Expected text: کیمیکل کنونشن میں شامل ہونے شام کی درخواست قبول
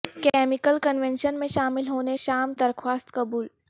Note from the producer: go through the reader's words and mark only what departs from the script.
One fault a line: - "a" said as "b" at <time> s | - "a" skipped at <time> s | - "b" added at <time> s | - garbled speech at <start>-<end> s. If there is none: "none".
- "کی" skipped at 2.5 s